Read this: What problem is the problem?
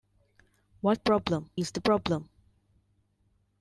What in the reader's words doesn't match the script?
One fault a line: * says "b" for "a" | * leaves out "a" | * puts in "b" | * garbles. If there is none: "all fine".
all fine